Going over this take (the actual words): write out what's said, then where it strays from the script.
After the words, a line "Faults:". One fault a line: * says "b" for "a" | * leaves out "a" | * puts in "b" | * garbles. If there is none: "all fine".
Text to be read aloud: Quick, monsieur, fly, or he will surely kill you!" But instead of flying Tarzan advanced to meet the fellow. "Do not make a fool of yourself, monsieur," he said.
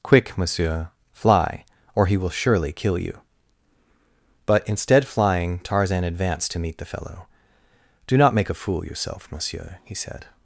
Quick, monsieur, fly, or he will surely kill you!" But instead flying Tarzan advanced to meet the fellow. "Do not make a fool yourself, monsieur," he said.
Faults:
* leaves out "of"
* leaves out "of"